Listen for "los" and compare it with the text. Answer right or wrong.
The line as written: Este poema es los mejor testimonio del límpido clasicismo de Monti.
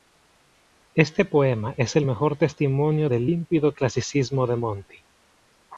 wrong